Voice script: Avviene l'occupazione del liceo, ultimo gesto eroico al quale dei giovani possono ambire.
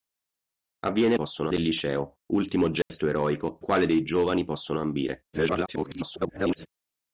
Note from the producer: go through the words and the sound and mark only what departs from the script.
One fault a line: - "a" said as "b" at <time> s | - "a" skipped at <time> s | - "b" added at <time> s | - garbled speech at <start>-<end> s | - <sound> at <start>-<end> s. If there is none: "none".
- "l'occupazione" said as "possono" at 1.1 s
- dropout at 2.8-2.9 s
- "al" skipped at 3.6 s
- garbled speech at 5.3-6.7 s